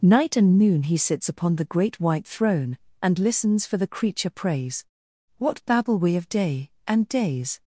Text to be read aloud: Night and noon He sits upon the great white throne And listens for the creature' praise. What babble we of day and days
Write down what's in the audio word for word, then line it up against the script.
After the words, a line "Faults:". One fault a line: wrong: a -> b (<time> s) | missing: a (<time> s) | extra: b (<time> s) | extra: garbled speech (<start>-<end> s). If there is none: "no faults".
Night and noon He sits upon the great white throne And listens for the creature' praise. What babble we of day and days
Faults:
no faults